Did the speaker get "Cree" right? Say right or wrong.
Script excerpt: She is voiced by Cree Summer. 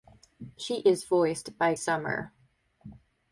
wrong